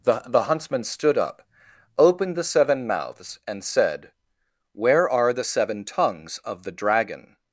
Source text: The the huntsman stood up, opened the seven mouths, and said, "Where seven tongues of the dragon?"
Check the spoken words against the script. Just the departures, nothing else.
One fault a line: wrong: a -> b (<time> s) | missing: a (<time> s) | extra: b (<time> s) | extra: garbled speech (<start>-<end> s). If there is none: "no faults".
extra: are the (5.1 s)